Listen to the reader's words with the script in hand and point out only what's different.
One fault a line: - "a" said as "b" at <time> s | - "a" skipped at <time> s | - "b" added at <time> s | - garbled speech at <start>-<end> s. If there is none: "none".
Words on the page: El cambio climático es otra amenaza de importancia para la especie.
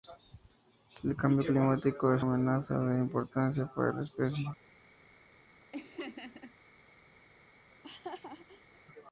- "otra" skipped at 2.2 s